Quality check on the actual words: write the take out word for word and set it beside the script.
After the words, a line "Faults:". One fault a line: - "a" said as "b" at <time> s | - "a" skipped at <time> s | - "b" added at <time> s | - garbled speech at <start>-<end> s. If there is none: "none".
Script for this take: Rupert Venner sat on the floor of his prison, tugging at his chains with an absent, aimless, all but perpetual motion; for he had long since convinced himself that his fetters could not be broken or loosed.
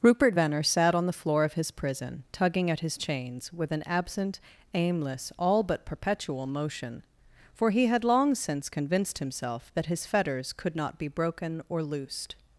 Rupert Venner sat on the floor of his prison, tugging at his chains with an absent, aimless, all but perpetual motion; for he had long since convinced himself that his fetters could not be broken or loosed.
Faults:
none